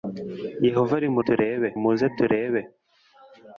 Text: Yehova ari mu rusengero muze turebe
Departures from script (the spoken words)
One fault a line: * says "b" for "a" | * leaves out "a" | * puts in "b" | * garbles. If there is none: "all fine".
* says "turebe" for "rusengero"